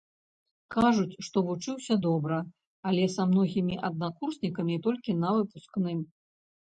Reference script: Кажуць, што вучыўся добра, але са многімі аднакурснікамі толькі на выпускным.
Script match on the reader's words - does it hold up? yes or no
yes